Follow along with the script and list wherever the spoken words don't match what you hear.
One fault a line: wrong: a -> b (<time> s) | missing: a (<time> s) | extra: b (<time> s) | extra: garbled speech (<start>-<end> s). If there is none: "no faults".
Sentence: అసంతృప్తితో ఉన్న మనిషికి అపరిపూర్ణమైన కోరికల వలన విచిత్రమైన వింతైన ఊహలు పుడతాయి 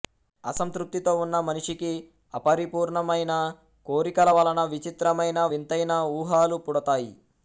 no faults